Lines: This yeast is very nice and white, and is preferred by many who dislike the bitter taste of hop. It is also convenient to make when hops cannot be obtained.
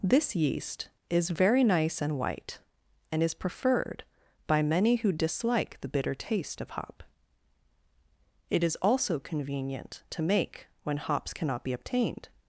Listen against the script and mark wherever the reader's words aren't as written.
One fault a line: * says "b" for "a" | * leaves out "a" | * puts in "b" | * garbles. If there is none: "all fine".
all fine